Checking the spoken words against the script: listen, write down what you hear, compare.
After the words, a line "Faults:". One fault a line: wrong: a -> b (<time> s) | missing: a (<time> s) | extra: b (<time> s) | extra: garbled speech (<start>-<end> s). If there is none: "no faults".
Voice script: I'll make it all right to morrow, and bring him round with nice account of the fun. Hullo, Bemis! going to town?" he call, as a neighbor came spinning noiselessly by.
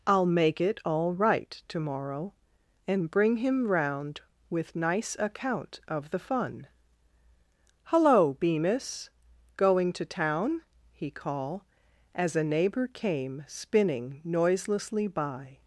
I'll make it all right to morrow, and bring him round with nice account of the fun. Hullo, Bemis! going to town?" he call, as a neighbor came spinning noiselessly by.
Faults:
no faults